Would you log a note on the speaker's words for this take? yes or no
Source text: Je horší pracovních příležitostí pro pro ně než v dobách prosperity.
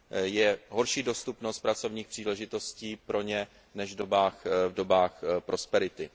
yes